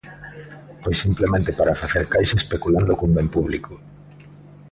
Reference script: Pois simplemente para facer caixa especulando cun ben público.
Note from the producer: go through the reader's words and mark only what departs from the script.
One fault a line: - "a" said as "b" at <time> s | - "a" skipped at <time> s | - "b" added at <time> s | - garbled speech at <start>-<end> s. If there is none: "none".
none